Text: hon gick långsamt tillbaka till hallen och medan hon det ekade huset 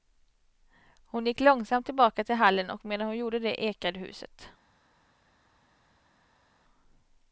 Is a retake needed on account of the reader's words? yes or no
yes